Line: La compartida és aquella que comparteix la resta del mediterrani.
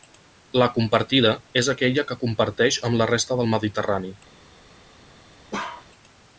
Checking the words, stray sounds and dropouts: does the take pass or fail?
fail